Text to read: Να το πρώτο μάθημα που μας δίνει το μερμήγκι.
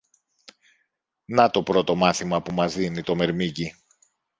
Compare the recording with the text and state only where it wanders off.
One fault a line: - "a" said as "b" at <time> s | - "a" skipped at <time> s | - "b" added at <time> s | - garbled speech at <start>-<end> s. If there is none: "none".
none